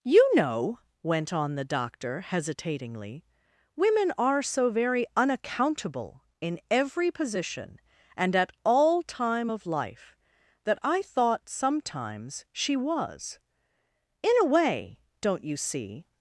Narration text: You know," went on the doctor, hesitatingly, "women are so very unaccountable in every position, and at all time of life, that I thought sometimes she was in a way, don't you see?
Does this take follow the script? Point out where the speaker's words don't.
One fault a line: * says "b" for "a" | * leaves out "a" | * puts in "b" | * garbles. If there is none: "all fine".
all fine